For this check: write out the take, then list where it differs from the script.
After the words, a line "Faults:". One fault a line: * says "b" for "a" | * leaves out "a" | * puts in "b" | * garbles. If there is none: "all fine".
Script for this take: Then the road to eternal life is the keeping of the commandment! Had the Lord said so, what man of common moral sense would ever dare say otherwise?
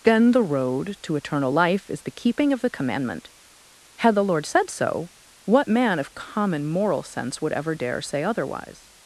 Then the road to eternal life is the keeping of the commandment! Had the Lord said so, what man of common moral sense would ever dare say otherwise?
Faults:
all fine